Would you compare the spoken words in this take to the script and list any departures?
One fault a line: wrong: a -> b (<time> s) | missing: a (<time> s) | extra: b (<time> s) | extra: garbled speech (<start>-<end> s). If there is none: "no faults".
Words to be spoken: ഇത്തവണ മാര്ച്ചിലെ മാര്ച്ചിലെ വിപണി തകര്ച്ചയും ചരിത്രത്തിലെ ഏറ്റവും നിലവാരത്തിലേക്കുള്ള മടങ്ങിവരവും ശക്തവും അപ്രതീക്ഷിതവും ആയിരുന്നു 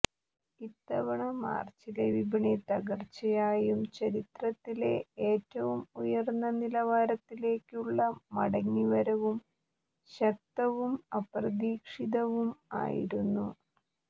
missing: മാര്ച്ചിലെ (2.0 s)
extra: ഉയര്ന്ന (6.0 s)